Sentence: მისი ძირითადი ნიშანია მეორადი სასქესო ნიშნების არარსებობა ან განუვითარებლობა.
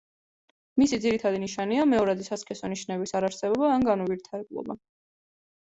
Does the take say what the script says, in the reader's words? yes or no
yes